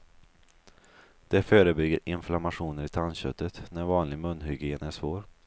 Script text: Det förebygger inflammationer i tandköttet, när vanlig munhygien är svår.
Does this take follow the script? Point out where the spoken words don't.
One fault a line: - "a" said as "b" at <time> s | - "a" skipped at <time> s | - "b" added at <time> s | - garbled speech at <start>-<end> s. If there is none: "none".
none